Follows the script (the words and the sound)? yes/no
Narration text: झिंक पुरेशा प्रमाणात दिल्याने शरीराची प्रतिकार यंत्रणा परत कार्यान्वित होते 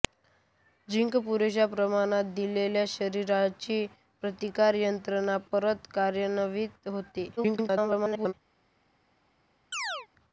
no